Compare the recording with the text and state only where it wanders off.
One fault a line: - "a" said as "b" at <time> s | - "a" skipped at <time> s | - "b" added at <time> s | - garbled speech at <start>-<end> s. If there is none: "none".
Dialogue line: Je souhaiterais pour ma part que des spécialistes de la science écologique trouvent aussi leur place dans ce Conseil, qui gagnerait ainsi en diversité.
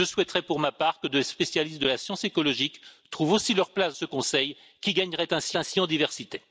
- "dans" skipped at 3.9 s
- "ainsi" added at 5.6 s